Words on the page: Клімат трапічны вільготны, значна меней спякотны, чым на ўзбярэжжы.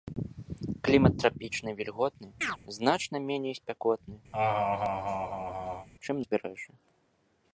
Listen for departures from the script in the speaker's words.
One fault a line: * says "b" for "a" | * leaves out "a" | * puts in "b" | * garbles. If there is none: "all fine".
* leaves out "на"